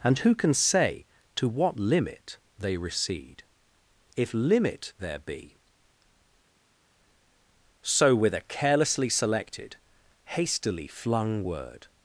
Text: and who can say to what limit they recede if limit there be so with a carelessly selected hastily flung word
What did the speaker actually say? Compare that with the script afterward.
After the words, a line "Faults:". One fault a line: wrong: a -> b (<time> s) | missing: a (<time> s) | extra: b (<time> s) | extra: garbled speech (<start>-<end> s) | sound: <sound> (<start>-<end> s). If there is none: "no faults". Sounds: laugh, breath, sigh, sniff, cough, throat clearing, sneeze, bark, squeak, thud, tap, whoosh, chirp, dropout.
and who can say to what limit they recede if limit there be so with a carelessly selected hastily flung word
Faults:
no faults